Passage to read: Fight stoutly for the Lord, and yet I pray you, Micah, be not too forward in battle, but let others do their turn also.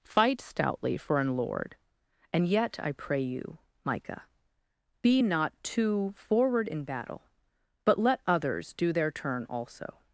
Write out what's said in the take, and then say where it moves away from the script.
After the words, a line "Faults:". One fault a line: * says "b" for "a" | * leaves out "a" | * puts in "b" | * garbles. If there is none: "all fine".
Fight stoutly for an Lord, and yet I pray you, Micah, be not too forward in battle, but let others do their turn also.
Faults:
* says "an" for "the"